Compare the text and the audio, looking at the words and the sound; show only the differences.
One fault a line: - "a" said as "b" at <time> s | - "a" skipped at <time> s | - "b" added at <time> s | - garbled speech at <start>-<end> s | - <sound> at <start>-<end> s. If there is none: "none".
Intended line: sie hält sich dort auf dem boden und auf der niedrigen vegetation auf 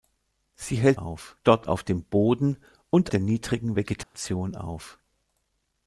- "sich" said as "auf" at 0.9 s
- "auf" skipped at 3.1 s
- dropout at 4.0-4.1 s